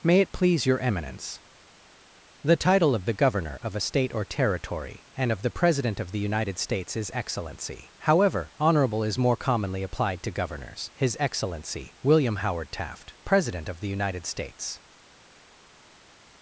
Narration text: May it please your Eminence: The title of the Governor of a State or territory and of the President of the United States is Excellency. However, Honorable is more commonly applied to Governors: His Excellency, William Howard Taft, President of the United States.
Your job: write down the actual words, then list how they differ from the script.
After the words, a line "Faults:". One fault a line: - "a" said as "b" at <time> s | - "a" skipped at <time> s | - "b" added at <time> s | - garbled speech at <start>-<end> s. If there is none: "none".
May it please your Eminence: The title of the Governor of a State or territory and of the President of the United States is Excellency. However, Honorable is more commonly applied to Governors: His Excellency, William Howard Taft, President of the United States.
Faults:
none